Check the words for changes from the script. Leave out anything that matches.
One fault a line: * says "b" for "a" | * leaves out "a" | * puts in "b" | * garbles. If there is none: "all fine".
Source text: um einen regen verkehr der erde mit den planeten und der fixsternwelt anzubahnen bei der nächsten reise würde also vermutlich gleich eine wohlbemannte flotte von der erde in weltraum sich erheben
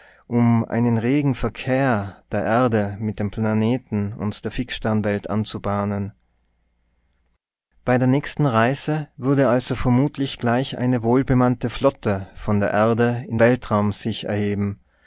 all fine